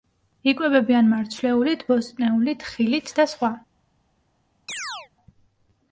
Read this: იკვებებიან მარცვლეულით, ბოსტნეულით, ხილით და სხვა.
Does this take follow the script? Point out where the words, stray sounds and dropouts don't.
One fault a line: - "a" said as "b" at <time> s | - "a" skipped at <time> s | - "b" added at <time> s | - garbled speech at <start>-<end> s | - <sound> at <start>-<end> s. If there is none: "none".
- chirp at 4.7-5.1 s